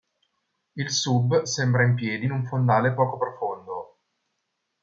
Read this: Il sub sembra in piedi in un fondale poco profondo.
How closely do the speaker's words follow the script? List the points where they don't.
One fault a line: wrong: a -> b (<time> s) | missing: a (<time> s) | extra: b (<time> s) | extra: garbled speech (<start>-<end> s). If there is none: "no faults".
no faults